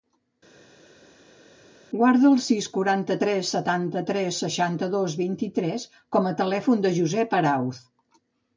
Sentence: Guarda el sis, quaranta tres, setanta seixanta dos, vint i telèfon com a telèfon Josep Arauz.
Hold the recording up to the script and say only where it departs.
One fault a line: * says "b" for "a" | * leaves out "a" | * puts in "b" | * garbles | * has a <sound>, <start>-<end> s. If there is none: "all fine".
* puts in "tres"
* says "tres" for "telèfon"
* puts in "del"